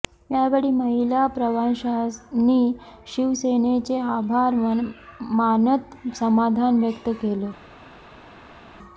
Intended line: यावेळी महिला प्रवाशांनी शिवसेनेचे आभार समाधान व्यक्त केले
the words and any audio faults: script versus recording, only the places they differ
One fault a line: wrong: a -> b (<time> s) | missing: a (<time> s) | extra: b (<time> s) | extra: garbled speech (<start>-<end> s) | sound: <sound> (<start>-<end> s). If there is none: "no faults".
extra: मानत (5.2 s)